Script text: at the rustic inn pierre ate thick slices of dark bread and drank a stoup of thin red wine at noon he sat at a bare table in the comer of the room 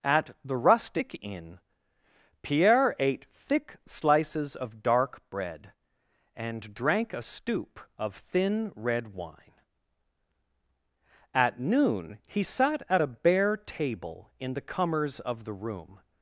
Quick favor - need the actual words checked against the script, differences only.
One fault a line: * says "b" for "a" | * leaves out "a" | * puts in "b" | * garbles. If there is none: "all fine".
* says "comers" for "comer"